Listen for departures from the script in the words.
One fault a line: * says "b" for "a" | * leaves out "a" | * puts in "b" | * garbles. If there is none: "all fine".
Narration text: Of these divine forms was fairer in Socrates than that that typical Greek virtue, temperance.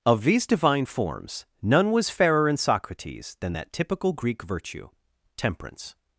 * puts in "none"
* leaves out "that"